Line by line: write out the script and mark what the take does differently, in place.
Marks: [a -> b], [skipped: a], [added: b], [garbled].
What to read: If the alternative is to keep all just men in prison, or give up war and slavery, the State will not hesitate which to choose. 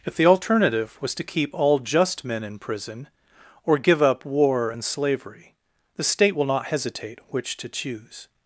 If the alternative [is -> was] to keep all just men in prison, or give up war and slavery, the State will not hesitate which to choose.